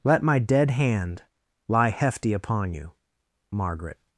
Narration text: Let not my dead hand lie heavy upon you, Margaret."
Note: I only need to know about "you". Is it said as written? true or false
true